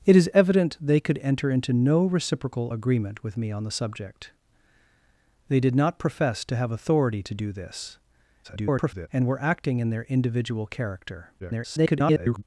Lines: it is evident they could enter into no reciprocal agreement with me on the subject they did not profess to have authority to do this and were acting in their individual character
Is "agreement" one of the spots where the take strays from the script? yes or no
no